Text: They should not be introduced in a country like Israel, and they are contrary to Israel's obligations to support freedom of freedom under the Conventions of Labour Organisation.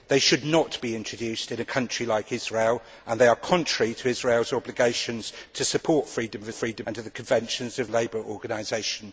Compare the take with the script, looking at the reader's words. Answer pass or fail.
pass